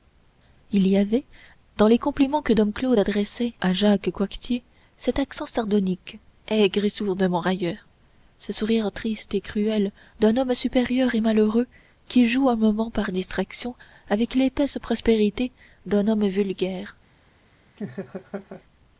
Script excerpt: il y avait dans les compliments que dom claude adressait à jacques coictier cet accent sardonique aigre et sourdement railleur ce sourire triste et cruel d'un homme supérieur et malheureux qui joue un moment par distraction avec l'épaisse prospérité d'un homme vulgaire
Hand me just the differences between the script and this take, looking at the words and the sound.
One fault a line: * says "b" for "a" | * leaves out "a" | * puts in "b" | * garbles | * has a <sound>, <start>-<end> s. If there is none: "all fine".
* has a laugh, 17.8-18.6 s